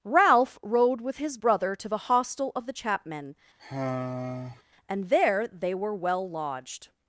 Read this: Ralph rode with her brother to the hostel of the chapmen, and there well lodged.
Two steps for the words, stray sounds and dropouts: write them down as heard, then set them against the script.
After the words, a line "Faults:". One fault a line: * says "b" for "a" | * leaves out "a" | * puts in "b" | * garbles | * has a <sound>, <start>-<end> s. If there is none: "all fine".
Ralph rode with his brother to the hostel of the chapmen, and there they were well lodged.
Faults:
* says "his" for "her"
* has a sigh, 3.6-4.6 s
* puts in "they were"